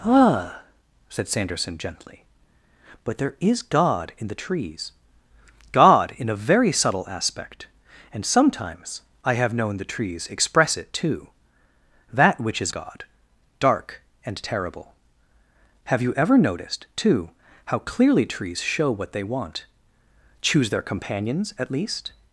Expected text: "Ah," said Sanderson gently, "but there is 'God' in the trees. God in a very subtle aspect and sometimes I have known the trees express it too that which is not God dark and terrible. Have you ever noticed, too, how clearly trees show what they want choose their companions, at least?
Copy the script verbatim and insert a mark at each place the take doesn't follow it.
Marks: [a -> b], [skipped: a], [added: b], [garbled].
"Ah," said Sanderson gently, "but there is 'God' in the trees. God in a very subtle aspect and sometimes I have known the trees express it too that which is [skipped: not] God dark and terrible. Have you ever noticed, too, how clearly trees show what they want choose their companions, at least?